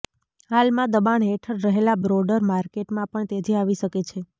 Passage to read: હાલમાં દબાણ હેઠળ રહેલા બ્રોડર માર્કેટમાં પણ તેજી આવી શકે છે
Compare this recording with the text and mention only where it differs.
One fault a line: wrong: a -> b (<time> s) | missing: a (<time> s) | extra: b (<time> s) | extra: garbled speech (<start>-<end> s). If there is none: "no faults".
no faults